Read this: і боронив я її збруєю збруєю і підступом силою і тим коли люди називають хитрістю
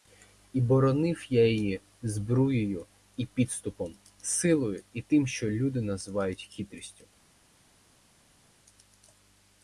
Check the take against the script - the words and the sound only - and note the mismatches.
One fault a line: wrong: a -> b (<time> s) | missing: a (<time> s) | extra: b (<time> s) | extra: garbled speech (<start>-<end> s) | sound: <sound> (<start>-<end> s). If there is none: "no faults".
missing: збруєю (2.9 s)
wrong: коли -> що (5.3 s)